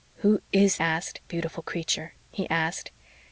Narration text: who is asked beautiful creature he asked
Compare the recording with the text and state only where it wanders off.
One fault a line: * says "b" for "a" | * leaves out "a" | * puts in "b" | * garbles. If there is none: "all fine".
all fine